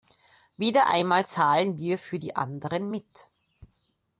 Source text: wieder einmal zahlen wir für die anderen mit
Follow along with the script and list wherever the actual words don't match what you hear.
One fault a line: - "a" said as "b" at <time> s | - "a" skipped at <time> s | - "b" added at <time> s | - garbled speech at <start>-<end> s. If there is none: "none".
none